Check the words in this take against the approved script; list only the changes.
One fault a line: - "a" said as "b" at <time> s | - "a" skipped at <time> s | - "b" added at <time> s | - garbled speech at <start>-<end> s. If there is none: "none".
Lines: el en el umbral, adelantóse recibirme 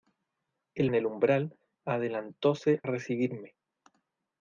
none